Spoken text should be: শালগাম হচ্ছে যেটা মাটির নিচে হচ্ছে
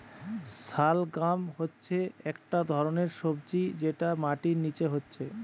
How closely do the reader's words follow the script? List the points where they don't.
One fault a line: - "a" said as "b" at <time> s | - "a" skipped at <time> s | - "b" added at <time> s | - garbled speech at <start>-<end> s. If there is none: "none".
- "একটা ধরণের সবজি" added at 2.3 s